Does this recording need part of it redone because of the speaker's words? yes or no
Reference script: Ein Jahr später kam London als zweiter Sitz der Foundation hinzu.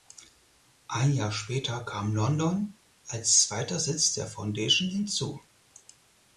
no